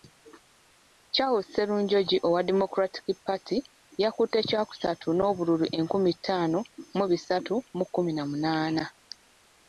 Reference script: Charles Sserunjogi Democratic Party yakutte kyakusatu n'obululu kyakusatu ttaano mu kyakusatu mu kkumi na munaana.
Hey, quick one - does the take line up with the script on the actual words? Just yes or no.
no